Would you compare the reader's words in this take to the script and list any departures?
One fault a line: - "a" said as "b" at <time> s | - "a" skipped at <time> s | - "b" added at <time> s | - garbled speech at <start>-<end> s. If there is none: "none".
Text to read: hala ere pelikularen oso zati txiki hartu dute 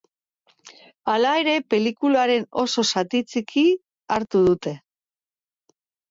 none